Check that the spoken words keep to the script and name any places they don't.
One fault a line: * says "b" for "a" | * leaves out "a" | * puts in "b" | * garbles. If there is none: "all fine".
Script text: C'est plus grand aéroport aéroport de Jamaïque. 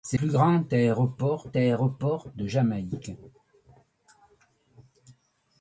all fine